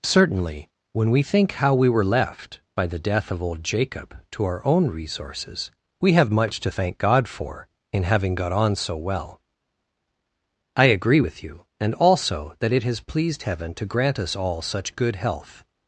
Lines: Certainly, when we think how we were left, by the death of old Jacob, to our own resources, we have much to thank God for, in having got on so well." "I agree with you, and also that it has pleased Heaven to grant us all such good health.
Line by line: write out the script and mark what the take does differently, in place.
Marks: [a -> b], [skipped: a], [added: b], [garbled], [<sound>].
Certainly, when we think how we were left, by the death of old Jacob, to our own resources, we have much to thank God for, in having got on so well." "I agree with you, and also that it has pleased Heaven to grant us all such good health.